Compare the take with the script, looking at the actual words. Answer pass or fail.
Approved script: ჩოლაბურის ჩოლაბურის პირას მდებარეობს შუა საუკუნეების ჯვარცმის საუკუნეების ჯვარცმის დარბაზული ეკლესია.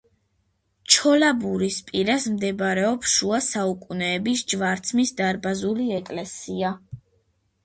fail